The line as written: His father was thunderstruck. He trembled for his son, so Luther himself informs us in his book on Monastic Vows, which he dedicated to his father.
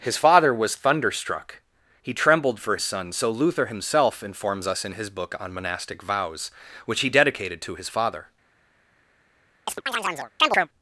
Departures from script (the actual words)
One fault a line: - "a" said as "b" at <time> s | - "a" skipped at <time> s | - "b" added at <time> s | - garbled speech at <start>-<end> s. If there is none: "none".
- "his" skipped at 2.8 s